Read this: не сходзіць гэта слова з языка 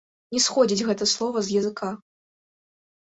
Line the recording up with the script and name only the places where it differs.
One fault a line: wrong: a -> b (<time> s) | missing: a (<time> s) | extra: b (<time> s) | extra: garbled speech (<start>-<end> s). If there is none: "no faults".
no faults